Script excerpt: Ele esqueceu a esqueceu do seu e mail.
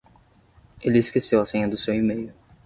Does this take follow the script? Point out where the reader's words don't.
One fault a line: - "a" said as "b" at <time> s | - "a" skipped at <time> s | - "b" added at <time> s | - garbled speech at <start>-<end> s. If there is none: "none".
- "esqueceu" said as "senha" at 1.4 s